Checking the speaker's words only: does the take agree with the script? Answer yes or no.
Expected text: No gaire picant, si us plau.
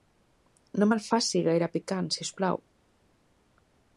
no